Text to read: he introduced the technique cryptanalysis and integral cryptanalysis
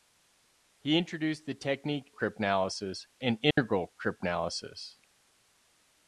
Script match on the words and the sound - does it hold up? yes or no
no